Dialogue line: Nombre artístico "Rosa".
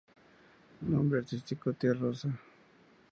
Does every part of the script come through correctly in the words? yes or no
no